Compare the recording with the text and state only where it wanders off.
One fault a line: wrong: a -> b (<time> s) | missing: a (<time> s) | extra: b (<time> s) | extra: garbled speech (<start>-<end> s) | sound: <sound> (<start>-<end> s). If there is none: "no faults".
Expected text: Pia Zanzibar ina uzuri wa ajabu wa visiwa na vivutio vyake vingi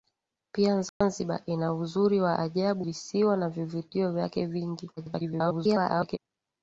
sound: dropout (0.9-1.0 s)
missing: wa (2.9 s)
extra: garbled speech (5.0-6.2 s)